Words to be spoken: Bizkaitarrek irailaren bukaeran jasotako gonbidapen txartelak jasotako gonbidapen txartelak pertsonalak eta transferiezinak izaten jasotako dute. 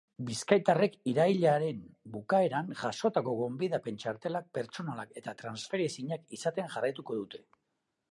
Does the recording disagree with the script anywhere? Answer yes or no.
yes